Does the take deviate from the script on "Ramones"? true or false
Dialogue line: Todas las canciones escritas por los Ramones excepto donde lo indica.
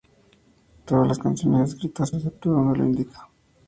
true